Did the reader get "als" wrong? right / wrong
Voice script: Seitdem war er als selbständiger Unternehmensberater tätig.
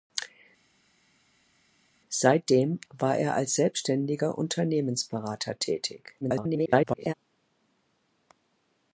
right